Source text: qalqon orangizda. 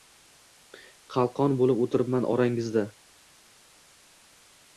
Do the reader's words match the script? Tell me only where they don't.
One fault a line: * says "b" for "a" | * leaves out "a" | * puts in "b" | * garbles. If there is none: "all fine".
* puts in "bo‘lib o‘tiribman"